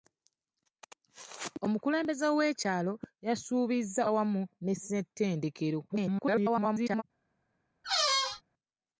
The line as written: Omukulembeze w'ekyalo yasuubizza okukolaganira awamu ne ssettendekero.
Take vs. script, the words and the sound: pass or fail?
fail